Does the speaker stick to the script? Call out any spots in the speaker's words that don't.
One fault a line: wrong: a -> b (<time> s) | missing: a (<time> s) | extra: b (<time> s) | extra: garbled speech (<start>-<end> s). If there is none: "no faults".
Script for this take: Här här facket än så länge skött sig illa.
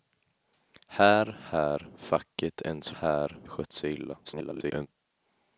wrong: länge -> här (3.0 s)
extra: garbled speech (4.2-4.9 s)